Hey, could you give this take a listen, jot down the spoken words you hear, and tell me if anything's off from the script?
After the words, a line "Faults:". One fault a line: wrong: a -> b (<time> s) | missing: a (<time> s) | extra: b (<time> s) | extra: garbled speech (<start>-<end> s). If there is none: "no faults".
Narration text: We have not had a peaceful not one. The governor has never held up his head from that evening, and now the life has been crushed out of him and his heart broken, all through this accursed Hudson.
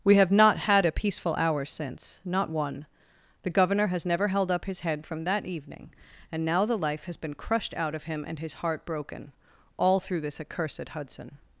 We have not had a peaceful hour since, not one. The governor has never held up his head from that evening, and now the life has been crushed out of him and his heart broken, all through this accursed Hudson.
Faults:
extra: hour since (1.4 s)